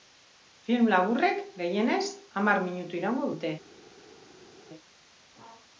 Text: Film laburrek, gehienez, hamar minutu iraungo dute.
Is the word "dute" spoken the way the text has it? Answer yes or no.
yes